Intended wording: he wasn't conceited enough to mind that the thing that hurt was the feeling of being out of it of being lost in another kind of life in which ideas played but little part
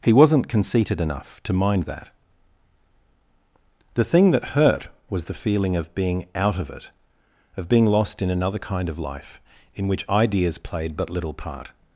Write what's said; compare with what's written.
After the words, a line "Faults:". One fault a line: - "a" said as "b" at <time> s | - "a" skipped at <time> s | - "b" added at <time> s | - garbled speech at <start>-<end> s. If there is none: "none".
he wasn't conceited enough to mind that the thing that hurt was the feeling of being out of it of being lost in another kind of life in which ideas played but little part
Faults:
none